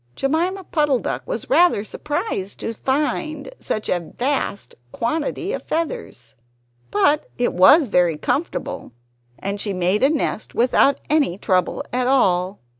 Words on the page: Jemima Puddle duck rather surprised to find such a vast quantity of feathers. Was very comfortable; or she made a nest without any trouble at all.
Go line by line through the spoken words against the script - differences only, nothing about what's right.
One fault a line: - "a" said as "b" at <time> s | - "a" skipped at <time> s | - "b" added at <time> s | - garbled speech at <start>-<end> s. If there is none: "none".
- "was" added at 1.3 s
- "But it" added at 6.9 s
- "or" said as "and" at 9.4 s